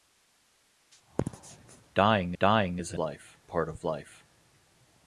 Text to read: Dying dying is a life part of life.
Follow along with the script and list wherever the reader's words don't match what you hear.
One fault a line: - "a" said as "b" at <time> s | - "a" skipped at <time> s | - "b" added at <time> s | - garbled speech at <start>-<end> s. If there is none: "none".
none